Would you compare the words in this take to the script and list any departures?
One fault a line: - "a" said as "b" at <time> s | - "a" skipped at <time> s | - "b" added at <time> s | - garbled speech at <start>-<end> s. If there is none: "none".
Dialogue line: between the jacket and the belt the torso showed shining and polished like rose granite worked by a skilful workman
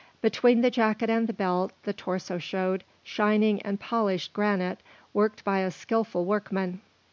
- "like rose" skipped at 4.3 s